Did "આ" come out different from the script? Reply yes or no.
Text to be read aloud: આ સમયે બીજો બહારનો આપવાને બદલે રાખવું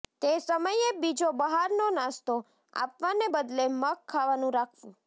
yes